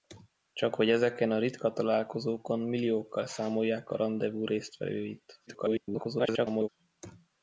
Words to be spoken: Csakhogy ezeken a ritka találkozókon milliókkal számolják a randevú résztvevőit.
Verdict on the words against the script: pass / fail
fail